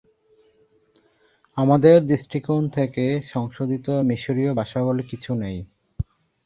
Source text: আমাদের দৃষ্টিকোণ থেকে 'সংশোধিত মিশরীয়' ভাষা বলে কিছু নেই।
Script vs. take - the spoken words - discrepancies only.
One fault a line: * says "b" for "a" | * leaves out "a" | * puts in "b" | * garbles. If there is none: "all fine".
all fine